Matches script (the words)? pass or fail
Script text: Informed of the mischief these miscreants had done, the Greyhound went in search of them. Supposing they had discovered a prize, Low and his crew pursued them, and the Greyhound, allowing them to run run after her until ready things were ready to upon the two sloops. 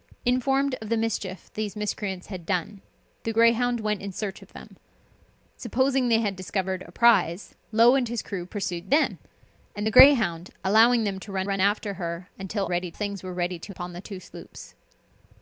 pass